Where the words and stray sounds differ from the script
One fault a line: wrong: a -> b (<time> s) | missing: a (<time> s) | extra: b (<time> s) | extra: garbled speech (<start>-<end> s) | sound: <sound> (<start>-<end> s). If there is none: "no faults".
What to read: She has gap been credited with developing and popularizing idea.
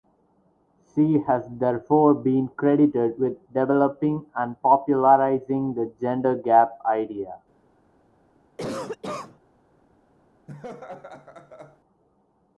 wrong: gap -> therefore (1.5 s)
extra: the gender gap (5.7 s)
sound: cough (8.6-9.4 s)
sound: laugh (10.5-11.8 s)